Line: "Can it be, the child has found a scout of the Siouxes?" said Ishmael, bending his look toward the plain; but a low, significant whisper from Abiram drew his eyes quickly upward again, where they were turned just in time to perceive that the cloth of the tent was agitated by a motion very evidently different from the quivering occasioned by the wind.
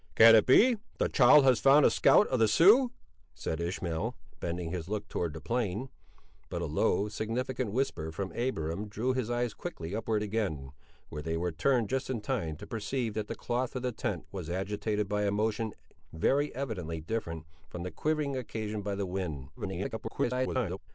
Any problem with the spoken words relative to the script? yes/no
yes